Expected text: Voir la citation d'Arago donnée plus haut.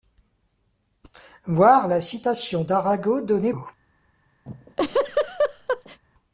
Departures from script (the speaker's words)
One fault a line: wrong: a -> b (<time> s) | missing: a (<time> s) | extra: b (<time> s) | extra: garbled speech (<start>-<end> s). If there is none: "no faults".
missing: plus (3.5 s)